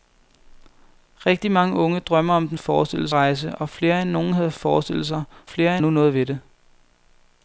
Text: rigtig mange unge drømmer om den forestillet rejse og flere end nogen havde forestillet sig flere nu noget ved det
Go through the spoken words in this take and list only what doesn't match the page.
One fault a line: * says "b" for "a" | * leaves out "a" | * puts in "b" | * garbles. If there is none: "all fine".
all fine